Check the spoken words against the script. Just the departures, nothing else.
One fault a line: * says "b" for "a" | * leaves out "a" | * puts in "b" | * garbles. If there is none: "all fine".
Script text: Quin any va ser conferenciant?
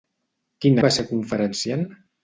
* leaves out "any"